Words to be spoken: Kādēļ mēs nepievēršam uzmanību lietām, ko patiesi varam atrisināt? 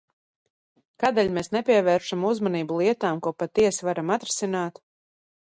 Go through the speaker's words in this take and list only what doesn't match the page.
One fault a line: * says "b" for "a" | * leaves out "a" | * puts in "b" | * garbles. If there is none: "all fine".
all fine